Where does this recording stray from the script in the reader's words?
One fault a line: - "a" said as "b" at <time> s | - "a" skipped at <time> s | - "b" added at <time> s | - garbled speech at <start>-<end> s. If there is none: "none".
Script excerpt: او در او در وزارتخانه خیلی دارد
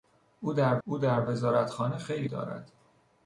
none